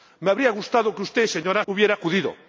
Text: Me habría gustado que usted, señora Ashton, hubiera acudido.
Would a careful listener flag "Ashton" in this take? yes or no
yes